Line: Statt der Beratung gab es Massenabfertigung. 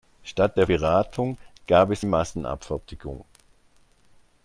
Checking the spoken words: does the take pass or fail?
pass